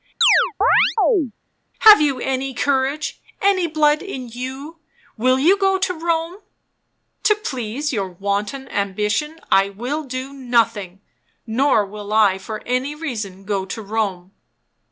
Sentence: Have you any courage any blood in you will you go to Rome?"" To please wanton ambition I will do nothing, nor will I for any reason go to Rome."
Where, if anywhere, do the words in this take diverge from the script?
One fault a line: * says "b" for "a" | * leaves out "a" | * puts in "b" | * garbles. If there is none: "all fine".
* puts in "your"